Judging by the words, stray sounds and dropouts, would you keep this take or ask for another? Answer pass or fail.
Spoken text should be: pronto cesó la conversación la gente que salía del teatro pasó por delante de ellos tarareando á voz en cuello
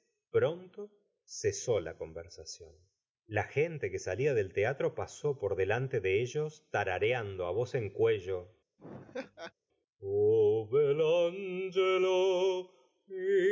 fail